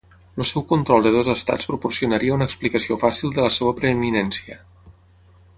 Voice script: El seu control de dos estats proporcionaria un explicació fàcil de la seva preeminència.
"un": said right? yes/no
no